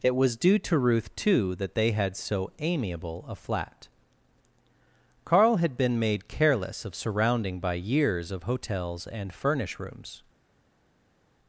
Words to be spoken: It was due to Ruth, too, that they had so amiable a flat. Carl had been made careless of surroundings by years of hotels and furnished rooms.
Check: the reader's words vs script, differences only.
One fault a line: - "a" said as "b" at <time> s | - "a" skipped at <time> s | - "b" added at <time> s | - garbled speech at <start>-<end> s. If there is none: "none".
- "surroundings" said as "surrounding" at 7.0 s
- "furnished" said as "furnish" at 9.3 s